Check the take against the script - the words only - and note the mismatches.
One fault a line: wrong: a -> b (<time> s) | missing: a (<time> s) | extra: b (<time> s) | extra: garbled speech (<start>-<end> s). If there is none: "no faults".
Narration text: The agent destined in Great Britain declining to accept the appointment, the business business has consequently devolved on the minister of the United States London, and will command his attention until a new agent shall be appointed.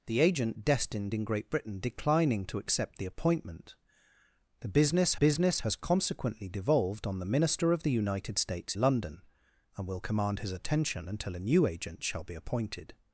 no faults